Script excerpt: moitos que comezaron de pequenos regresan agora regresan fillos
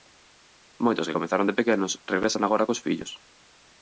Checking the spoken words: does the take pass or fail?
fail